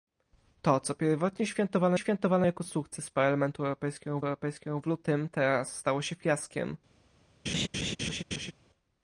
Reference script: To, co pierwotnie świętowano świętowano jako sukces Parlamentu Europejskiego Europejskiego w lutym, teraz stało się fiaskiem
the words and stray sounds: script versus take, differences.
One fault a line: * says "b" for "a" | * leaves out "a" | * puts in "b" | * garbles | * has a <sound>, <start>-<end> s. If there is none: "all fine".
* has a laugh, 7.5-8.5 s